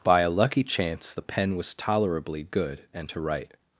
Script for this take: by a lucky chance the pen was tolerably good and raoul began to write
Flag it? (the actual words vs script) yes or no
yes